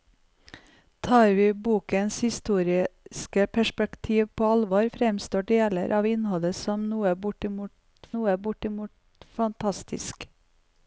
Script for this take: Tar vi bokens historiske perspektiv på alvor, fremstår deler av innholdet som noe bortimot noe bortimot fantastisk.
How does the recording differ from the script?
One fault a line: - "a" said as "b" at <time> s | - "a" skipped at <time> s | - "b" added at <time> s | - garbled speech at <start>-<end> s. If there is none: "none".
none